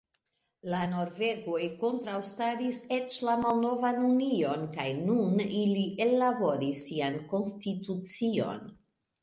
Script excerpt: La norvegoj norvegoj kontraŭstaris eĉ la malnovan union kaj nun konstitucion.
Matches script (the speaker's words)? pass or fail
fail